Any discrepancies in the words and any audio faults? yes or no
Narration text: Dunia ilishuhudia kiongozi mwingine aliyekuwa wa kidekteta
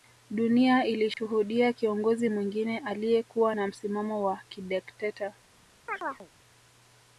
yes